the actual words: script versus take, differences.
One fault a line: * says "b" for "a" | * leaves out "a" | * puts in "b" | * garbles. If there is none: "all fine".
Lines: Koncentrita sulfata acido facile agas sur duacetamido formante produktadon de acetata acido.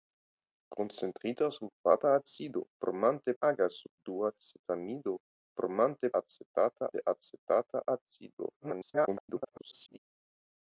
* says "formante" for "facile"
* says "acetata" for "produktadon"
* garbles